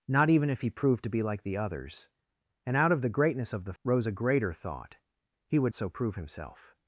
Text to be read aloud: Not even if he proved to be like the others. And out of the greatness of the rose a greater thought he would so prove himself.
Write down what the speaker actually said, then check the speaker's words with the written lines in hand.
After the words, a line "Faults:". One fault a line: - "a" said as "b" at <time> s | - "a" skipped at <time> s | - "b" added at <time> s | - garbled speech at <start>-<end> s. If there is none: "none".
Not even if he proved to be like the others. And out of the greatness of the rose a greater thought he would so prove himself.
Faults:
none